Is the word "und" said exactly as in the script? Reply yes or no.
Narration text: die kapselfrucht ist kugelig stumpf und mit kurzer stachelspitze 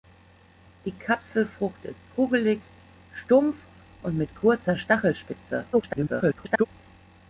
yes